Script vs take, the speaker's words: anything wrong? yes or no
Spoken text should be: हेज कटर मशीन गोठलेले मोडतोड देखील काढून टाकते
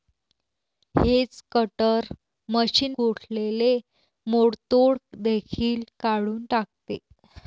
no